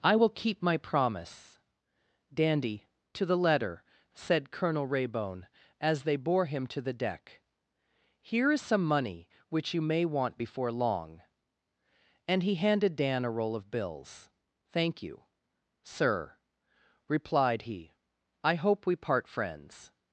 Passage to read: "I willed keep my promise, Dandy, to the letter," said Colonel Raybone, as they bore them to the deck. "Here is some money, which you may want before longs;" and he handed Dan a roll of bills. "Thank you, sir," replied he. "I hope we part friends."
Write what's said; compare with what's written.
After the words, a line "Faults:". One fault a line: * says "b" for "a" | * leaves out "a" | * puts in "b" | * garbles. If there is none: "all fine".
"I will keep my promise, Dandy, to the letter," said Colonel Raybone, as they bore him to the deck. "Here is some money, which you may want before long;" and he handed Dan a roll of bills. "Thank you, sir," replied he. "I hope we part friends."
Faults:
* says "will" for "willed"
* says "him" for "them"
* says "long" for "longs"